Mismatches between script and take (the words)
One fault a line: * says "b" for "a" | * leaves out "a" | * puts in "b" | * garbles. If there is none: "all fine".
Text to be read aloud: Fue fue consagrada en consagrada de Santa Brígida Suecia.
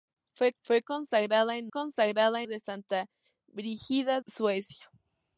all fine